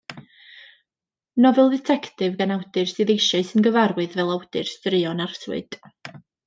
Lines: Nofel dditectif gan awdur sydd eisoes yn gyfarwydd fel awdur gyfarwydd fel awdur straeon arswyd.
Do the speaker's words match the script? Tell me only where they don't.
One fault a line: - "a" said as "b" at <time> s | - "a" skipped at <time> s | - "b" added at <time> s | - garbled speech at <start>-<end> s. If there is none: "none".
- "gyfarwydd fel awdur" skipped at 4.7 s